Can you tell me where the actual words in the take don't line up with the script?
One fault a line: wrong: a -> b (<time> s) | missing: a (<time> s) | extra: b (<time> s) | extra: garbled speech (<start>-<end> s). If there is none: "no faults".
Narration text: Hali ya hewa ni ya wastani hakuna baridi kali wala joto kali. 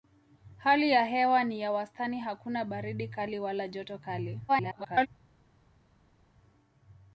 extra: garbled speech (4.5-5.1 s)